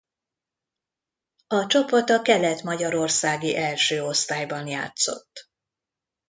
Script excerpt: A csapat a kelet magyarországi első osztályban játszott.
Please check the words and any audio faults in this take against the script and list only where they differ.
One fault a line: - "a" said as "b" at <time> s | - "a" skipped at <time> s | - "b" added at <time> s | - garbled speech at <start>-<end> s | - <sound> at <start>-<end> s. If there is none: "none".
none